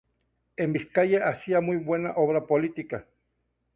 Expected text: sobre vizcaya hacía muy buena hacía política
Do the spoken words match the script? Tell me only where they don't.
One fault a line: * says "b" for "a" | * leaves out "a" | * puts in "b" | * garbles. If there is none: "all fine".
* says "en" for "sobre"
* says "obra" for "hacía"